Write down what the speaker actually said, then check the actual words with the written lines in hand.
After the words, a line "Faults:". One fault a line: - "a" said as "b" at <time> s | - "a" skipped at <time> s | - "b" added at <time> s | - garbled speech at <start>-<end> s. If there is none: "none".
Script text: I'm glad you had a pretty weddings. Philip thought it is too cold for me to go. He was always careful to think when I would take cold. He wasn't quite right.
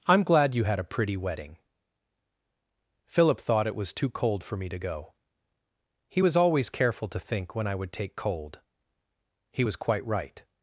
I'm glad you had a pretty wedding. Philip thought it was too cold for me to go. He was always careful to think when I would take cold. He was quite right.
Faults:
- "weddings" said as "wedding" at 1.1 s
- "is" said as "was" at 3.8 s
- "wasn't" said as "was" at 9.6 s